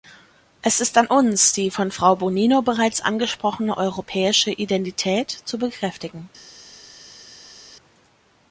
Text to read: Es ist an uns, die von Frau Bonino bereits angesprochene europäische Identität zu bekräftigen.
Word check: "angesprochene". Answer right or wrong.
right